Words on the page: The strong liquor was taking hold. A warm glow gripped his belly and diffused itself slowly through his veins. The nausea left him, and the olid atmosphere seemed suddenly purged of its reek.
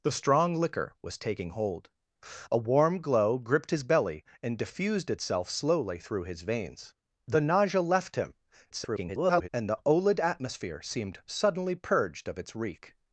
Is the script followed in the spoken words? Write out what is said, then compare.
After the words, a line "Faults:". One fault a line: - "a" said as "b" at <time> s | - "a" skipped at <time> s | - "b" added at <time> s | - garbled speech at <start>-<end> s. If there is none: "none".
The strong liquor was taking hold. A warm glow gripped his belly and diffused itself slowly through his veins. The nausea left him, [garbled] and the olid atmosphere seemed suddenly purged of its reek.
Faults:
- garbled speech at 8.7-9.5 s